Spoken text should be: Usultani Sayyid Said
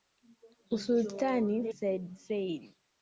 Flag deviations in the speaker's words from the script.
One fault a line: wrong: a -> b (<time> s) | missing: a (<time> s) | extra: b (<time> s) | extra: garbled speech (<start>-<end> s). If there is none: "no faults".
no faults